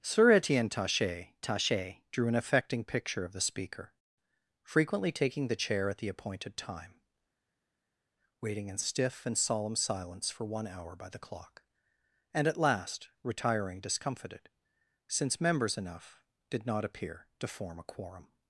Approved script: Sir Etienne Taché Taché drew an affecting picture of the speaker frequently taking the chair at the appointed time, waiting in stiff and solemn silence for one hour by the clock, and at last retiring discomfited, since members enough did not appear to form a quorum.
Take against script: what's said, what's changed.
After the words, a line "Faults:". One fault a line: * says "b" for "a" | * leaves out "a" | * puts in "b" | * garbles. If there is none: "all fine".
Sir Etienne Taché Taché drew an affecting picture of the speaker frequently taking the chair at the appointed time, waiting in stiff and solemn silence for one hour by the clock, and at last retiring discomfited, since members enough did not appear to form a quorum.
Faults:
all fine